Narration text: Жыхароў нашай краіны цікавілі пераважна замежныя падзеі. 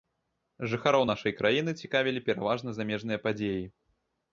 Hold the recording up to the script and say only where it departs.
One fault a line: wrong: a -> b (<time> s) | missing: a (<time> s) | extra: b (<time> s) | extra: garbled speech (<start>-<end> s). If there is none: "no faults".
no faults